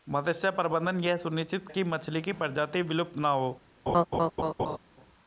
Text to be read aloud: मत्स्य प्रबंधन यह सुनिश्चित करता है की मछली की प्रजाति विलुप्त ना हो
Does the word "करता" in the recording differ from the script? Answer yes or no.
yes